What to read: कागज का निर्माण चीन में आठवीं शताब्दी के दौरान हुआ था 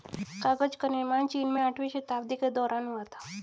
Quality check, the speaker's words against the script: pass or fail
pass